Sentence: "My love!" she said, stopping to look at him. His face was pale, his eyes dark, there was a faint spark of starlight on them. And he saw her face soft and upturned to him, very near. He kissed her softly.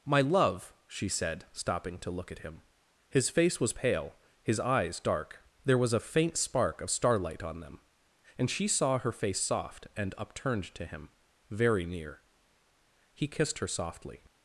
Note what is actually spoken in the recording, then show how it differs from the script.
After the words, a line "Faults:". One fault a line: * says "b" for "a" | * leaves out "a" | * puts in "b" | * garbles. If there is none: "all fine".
"My love!" she said, stopping to look at him. His face was pale, his eyes dark, there was a faint spark of starlight on them. And she saw her face soft and upturned to him, very near. He kissed her softly.
Faults:
* says "she" for "he"